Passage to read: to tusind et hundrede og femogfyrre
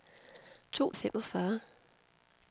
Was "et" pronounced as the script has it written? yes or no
no